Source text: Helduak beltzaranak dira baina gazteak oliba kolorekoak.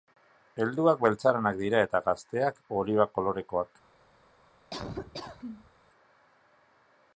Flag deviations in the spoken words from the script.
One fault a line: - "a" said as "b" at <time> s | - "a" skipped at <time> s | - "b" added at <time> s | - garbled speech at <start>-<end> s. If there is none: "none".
- "baina" said as "eta" at 1.9 s